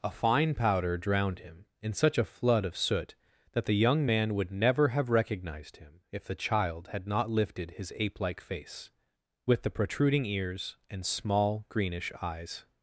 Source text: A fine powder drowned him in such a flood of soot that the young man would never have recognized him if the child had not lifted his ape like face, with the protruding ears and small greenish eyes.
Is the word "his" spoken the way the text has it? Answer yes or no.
yes